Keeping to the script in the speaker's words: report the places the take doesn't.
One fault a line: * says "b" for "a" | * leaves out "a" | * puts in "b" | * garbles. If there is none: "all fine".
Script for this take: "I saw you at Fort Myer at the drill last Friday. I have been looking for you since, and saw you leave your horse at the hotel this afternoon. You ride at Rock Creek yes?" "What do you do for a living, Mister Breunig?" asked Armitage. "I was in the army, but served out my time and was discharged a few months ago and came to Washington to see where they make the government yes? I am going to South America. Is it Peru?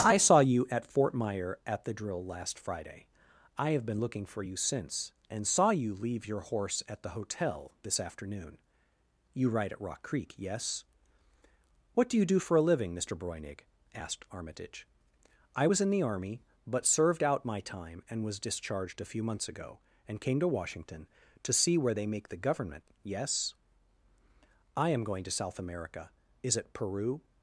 all fine